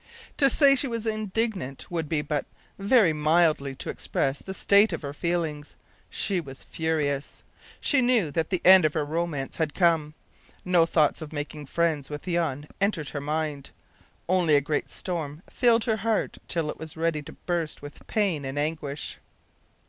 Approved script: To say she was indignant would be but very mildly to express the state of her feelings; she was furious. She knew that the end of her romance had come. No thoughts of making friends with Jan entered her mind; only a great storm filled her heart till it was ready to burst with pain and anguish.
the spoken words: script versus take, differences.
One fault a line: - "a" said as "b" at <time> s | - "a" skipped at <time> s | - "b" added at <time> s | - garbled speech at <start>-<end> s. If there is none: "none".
none